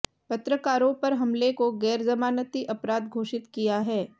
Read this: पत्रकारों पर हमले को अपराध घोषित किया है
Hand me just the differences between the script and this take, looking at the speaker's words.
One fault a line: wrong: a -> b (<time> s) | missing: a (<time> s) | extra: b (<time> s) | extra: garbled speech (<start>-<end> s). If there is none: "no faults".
extra: गैरजमानती (1.8 s)